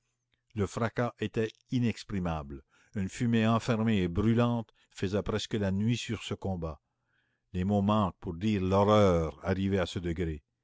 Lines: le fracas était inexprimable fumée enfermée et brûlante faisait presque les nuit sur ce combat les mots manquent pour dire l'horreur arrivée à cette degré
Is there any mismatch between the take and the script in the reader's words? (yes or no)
yes